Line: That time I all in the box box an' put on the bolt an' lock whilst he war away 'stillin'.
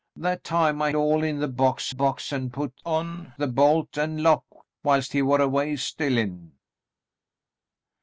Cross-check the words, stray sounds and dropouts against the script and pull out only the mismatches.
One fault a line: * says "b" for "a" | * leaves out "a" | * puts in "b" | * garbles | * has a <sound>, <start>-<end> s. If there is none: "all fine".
all fine